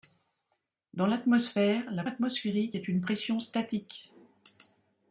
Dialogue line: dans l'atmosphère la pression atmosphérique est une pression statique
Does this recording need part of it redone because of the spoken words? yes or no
yes